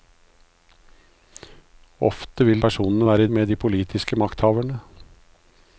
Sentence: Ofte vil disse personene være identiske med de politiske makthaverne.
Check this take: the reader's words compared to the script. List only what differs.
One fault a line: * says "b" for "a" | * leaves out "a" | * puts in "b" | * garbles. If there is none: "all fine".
* leaves out "disse"
* leaves out "identiske"